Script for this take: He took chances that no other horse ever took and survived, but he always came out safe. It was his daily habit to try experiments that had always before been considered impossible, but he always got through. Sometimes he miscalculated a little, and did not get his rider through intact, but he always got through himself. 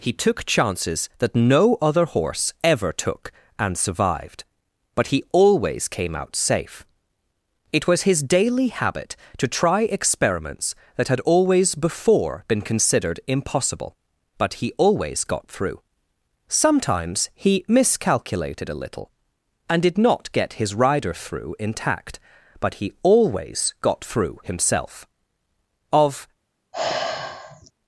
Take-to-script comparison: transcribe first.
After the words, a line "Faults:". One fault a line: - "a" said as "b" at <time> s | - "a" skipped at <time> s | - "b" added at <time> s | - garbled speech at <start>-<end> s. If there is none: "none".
He took chances that no other horse ever took and survived, but he always came out safe. It was his daily habit to try experiments that had always before been considered impossible, but he always got through. Sometimes he miscalculated a little, and did not get his rider through intact, but he always got through himself. Of
Faults:
- "Of" added at 25.9 s